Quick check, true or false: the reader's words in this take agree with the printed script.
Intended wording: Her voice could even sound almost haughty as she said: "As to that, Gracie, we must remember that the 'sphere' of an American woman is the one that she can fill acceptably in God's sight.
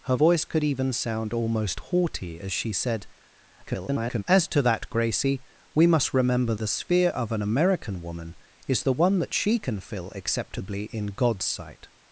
false